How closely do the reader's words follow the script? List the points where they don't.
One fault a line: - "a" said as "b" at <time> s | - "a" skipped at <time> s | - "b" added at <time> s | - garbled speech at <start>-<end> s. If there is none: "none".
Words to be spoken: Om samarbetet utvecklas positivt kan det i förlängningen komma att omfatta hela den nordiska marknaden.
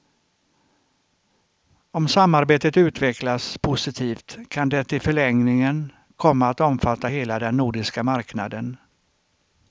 none